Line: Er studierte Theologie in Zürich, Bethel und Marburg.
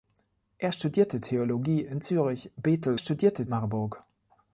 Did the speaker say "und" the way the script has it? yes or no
no